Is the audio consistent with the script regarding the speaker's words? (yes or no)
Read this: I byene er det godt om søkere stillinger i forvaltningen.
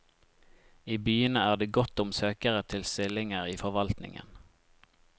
no